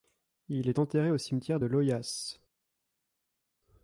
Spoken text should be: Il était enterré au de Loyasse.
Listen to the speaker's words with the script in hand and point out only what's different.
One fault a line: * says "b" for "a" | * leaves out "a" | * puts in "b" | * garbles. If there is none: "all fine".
* says "est" for "était"
* puts in "cimetière"